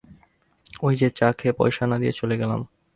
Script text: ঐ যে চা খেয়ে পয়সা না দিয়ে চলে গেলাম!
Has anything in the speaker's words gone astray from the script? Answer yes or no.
no